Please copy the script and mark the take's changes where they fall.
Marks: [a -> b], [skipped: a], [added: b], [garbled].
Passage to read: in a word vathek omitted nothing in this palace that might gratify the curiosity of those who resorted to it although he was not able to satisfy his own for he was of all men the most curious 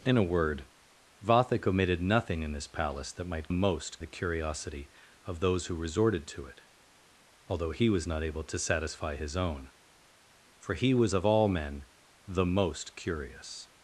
in a word vathek omitted nothing in this palace that might [gratify -> most] the curiosity of those who resorted to it although he was not able to satisfy his own for he was of all men the most curious